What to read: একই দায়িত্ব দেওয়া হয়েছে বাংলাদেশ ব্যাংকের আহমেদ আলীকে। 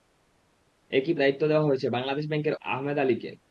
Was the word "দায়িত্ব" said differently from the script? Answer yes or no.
no